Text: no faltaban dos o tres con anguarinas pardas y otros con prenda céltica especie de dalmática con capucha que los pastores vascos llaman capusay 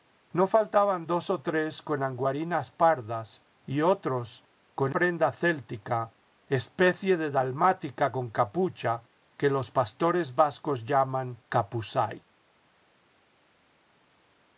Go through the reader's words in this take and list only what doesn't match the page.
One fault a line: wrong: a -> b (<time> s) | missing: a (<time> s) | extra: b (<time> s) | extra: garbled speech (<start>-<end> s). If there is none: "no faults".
no faults